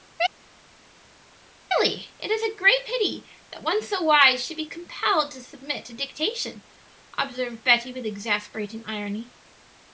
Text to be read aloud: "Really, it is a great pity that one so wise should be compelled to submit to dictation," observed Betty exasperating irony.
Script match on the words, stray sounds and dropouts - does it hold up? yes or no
no